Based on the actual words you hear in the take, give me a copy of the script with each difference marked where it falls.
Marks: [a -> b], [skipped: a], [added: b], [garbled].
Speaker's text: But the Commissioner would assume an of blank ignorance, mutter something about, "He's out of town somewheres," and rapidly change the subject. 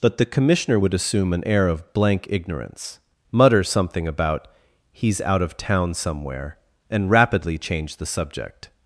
But the Commissioner would assume an [added: air] of blank ignorance, mutter something about, "He's out of town [somewheres," -> somewhere] and rapidly change the subject.